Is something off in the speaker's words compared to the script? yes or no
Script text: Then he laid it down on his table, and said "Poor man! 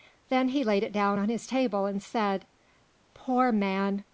no